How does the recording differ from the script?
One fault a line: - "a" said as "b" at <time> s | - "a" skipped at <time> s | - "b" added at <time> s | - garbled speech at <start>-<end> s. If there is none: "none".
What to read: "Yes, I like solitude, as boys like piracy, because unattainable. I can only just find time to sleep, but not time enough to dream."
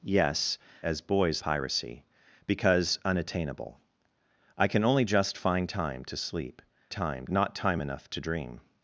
- "I like solitude" skipped at 0.6 s
- "like" skipped at 1.4 s
- "but" said as "time" at 6.9 s